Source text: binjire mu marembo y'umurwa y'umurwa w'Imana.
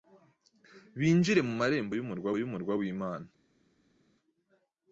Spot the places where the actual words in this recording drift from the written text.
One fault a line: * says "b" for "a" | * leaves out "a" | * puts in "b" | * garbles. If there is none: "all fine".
all fine